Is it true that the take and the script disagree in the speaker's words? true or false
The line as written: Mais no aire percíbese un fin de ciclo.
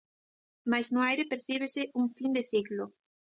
false